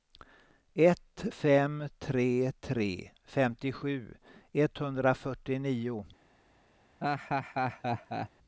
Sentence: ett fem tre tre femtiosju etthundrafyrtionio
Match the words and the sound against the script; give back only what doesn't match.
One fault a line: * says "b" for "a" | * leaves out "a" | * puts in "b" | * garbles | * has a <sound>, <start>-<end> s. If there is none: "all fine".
* has a laugh, 7.0-8.3 s